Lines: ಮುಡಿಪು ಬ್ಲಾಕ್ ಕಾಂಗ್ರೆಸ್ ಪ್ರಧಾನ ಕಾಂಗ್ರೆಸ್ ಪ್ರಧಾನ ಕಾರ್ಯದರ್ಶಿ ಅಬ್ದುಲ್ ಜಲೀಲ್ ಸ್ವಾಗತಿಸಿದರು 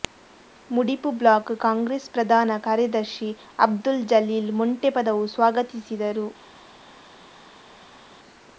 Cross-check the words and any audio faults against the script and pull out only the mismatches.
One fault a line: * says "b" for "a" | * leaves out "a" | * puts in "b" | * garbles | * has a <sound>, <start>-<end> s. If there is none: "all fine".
* leaves out "ಕಾಂಗ್ರೆಸ್ ಪ್ರಧಾನ"
* puts in "ಮೊಂಟೆಪದವು"